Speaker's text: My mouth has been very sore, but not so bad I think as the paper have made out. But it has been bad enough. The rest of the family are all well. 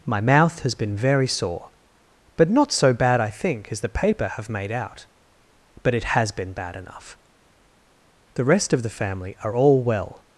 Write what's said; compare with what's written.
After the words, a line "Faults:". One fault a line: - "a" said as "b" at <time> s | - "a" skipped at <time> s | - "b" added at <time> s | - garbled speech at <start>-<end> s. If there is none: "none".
My mouth has been very sore, but not so bad I think as the paper have made out. But it has been bad enough. The rest of the family are all well.
Faults:
none